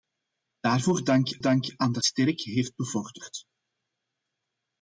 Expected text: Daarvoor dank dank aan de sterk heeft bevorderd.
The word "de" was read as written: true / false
true